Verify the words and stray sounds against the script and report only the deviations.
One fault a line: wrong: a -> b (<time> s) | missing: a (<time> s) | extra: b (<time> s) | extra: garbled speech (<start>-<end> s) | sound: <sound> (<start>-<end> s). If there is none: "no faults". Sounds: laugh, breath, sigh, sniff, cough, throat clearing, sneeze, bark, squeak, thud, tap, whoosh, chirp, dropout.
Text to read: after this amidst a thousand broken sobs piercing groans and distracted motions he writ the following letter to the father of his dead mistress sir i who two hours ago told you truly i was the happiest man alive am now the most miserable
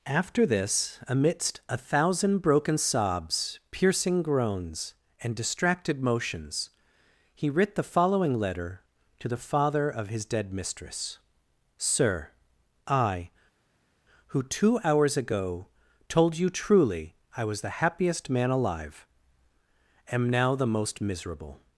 no faults